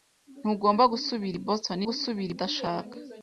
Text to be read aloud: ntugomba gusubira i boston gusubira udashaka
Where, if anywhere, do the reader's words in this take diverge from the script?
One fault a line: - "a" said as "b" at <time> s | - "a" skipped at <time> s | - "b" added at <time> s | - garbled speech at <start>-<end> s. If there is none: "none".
none